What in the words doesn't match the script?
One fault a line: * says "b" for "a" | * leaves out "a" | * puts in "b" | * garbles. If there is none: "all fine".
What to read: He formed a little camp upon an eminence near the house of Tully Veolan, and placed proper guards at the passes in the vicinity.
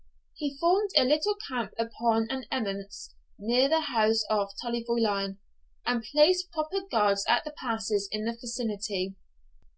all fine